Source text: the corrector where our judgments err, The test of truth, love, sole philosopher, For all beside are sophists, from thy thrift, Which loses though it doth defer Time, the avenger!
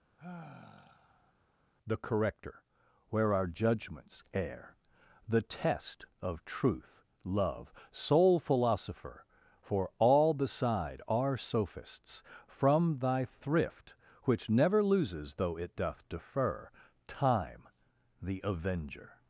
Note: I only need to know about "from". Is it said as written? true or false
true